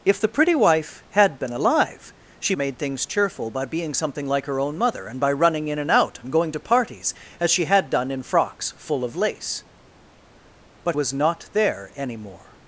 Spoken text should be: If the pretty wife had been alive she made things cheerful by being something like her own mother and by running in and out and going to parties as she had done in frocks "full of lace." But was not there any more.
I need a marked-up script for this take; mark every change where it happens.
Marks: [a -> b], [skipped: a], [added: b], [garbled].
If the pretty wife had been alive she made things cheerful by being something like her own mother and by running in and out and going to parties as she had done in frocks "full of lace." But was not there any more.